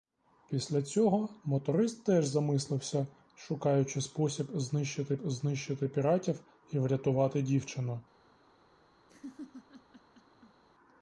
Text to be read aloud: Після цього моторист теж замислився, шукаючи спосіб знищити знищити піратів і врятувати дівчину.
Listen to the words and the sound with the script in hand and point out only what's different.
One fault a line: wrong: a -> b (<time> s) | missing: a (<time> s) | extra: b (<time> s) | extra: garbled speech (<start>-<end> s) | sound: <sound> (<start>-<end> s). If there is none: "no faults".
sound: laugh (9.1-10.6 s)